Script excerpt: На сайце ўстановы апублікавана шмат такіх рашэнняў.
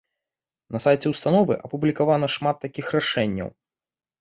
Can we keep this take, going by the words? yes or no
yes